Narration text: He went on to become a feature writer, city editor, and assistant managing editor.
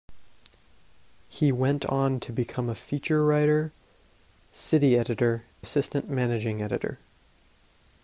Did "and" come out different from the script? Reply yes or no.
yes